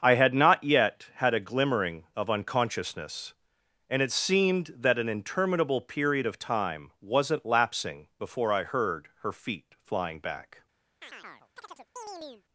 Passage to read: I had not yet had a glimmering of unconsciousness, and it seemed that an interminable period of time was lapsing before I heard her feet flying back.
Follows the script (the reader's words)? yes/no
no